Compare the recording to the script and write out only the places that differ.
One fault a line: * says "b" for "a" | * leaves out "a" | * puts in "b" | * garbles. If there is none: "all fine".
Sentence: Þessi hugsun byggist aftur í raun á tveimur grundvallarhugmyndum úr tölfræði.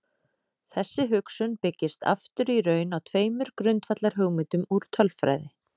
all fine